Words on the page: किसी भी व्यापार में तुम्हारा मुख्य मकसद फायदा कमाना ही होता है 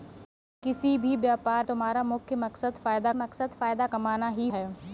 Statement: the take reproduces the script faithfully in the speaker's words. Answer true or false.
false